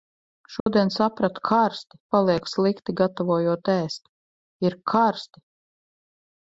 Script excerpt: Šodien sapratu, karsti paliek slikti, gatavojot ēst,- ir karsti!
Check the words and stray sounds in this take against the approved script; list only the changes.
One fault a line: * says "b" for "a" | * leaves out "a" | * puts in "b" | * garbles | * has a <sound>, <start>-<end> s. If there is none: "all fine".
* has a dropout, 0.6-0.7 s